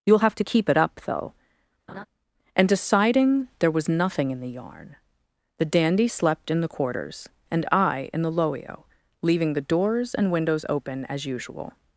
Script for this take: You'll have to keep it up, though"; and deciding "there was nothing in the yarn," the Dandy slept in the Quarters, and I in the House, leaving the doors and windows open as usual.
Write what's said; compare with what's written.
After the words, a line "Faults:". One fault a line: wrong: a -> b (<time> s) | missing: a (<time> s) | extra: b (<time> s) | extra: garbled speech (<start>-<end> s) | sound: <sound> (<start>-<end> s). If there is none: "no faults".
You'll have to keep it up, though"; and deciding "there was nothing in the yarn," the Dandy slept in the Quarters, and I in the Loio, leaving the doors and windows open as usual.
Faults:
sound: laugh (1.9-2.1 s)
wrong: House -> Loio (8.3 s)